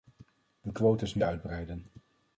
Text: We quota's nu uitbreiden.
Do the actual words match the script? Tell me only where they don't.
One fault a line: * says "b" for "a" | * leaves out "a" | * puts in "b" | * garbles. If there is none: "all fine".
all fine